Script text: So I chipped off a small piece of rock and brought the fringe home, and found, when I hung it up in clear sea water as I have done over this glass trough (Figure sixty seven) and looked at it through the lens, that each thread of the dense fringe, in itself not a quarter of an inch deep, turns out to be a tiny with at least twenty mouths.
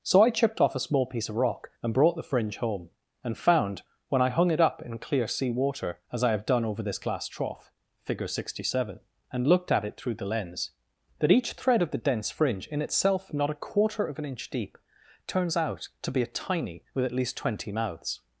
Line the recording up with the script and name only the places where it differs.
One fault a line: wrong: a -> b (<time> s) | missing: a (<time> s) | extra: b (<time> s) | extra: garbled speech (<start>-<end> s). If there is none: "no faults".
no faults